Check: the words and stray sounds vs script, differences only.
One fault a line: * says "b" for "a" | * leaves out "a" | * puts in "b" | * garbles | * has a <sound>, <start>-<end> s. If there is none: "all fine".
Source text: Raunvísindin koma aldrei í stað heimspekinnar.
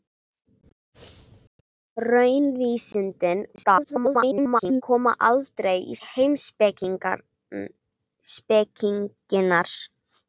* garbles
* leaves out "stað"